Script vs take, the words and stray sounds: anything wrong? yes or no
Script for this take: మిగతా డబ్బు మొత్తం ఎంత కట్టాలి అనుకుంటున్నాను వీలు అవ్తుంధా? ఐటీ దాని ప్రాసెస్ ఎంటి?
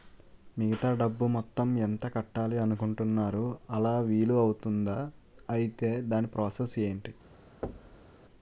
yes